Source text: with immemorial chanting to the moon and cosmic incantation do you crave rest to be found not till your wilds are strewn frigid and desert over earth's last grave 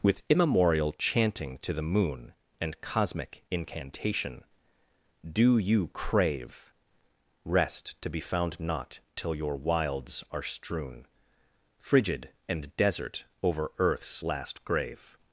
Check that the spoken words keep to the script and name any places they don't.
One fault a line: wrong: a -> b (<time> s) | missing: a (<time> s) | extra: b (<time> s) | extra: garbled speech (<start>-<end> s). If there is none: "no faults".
no faults